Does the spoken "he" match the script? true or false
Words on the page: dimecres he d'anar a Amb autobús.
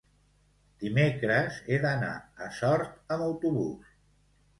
true